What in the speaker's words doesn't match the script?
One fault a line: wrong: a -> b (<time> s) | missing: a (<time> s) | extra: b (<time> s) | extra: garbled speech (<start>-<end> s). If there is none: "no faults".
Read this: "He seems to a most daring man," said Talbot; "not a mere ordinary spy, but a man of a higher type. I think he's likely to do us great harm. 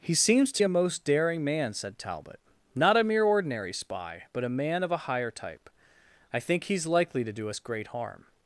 no faults